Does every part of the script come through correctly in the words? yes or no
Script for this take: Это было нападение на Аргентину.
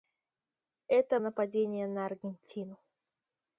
no